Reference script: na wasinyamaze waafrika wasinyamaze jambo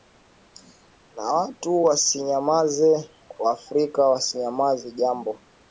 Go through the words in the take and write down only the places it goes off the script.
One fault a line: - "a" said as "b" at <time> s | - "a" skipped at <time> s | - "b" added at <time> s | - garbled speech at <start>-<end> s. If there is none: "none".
- "watu" added at 1.3 s